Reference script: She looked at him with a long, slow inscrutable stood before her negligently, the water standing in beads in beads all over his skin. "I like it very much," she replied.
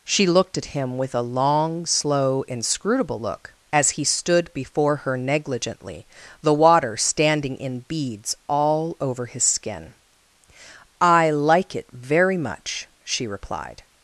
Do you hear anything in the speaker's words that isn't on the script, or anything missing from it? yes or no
yes